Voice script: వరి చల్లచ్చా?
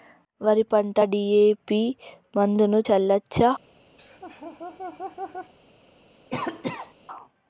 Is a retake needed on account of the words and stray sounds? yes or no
yes